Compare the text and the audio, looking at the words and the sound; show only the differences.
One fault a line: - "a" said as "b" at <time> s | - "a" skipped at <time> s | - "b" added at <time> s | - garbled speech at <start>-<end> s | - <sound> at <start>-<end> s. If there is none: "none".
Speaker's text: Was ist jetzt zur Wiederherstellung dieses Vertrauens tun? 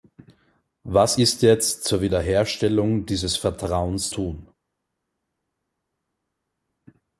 none